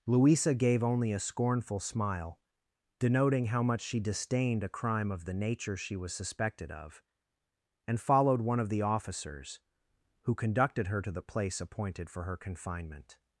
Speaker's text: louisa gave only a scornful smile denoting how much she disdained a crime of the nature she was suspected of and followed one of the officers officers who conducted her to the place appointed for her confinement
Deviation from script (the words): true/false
true